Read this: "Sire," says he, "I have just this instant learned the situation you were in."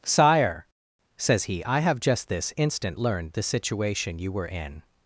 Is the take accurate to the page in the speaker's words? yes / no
yes